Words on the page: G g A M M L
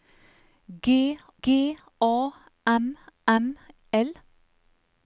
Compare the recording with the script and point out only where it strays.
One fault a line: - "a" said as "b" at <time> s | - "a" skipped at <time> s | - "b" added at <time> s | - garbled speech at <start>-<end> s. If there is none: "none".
none